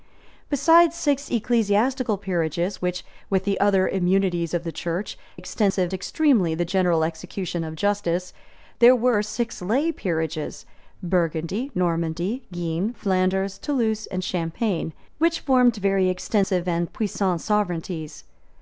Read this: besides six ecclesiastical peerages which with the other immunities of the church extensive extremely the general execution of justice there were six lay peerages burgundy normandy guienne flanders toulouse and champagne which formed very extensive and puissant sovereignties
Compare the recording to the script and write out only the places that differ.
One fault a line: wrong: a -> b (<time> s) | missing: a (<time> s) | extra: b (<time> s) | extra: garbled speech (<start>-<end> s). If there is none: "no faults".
no faults